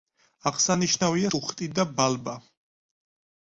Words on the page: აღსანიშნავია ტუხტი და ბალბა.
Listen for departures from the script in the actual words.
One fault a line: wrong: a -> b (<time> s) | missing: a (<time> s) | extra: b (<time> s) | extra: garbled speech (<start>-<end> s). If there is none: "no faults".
no faults